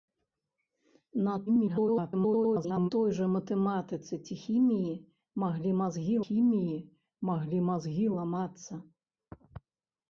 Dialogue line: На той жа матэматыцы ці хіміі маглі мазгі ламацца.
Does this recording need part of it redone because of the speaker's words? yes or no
yes